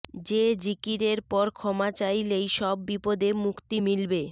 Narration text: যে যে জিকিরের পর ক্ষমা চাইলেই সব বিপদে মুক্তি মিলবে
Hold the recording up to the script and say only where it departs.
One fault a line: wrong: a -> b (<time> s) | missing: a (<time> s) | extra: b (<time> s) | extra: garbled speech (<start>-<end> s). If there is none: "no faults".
missing: যে (0.4 s)